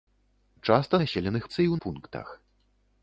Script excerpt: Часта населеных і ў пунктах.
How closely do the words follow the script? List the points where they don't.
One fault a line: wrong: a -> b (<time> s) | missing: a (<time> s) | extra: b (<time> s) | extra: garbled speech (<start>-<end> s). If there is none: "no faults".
no faults